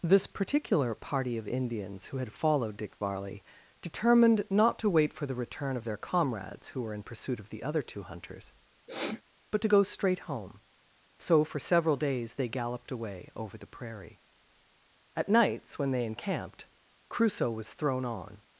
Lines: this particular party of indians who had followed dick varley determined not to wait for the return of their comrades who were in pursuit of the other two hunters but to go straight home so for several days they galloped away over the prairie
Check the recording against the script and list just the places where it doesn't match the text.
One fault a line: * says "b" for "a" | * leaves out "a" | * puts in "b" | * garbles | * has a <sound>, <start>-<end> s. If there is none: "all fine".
* has a sniff, 8.9-9.2 s
* puts in "at nights when they encamped crusoe was thrown on"